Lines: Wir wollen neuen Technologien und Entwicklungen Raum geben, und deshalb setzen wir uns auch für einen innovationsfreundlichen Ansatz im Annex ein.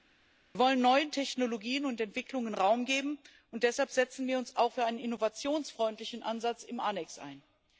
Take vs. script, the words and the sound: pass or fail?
pass